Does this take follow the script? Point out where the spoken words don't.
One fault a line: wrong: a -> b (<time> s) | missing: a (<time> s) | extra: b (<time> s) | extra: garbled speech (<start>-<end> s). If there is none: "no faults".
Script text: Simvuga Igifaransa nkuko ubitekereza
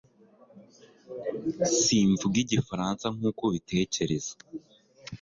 no faults